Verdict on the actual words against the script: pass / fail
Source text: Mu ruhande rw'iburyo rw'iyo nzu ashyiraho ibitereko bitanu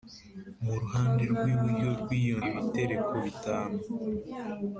fail